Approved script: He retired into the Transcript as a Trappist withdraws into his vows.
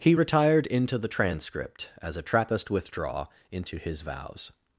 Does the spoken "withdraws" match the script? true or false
false